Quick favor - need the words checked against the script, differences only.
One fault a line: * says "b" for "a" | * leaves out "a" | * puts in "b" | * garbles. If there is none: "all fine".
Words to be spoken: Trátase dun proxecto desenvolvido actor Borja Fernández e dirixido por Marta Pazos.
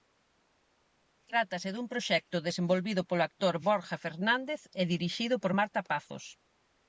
* puts in "polo"